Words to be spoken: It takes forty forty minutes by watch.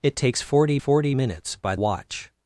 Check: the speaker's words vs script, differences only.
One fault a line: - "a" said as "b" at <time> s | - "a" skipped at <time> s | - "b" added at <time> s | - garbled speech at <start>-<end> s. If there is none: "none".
none